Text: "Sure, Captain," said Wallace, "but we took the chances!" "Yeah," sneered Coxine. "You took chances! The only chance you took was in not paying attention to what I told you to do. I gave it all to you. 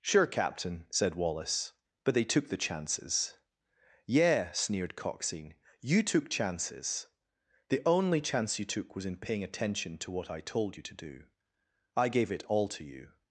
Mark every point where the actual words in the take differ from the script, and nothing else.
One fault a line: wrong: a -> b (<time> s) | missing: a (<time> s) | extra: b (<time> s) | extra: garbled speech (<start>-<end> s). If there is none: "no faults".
wrong: we -> they (2.1 s)
missing: not (9.2 s)